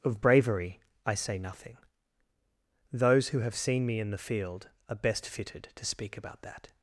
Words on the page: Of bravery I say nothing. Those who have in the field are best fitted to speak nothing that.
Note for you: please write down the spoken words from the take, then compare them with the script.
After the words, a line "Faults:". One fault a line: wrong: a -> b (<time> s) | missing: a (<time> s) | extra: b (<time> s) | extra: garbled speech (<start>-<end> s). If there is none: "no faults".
Of bravery I say nothing. Those who have seen me in the field are best fitted to speak about that.
Faults:
extra: seen me (3.5 s)
wrong: nothing -> about (6.2 s)